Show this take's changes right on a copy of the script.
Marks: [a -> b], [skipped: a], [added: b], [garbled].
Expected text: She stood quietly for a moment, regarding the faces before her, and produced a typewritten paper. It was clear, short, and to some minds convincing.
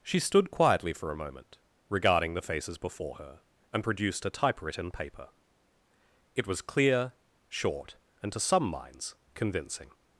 She stood quietly for a moment, regarding the faces before her, and produced a typewritten paper. It was clear, short, and to some minds convincing.